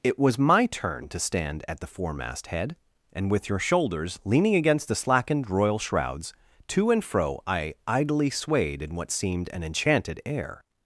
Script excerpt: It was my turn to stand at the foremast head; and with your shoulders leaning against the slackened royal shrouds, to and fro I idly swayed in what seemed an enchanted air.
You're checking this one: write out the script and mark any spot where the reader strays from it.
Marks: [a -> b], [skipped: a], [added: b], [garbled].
It was my turn to stand at the foremast head; and with your shoulders leaning against the slackened royal shrouds, to and fro I idly swayed in what seemed an enchanted air.